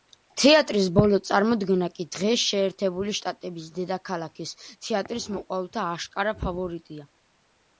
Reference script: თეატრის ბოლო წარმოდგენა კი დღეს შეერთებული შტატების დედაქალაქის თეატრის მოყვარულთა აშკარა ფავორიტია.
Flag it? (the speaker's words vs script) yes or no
no